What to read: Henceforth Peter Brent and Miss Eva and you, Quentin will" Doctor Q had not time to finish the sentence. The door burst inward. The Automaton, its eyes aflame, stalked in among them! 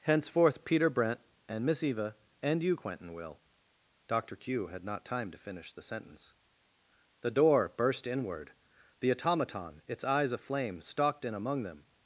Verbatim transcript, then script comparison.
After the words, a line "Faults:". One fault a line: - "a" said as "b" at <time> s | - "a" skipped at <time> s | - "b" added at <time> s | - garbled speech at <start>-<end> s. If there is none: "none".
Henceforth Peter Brent and Miss Eva and you, Quentin will" Doctor Q had not time to finish the sentence. The door burst inward. The Automaton, its eyes aflame, stalked in among them!
Faults:
none